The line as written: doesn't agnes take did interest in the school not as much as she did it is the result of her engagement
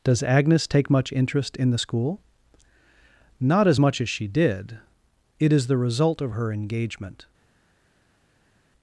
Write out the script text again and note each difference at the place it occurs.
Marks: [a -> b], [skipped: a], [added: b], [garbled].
[doesn't -> does] agnes take [did -> much] interest in the school not as much as she did it is the result of her engagement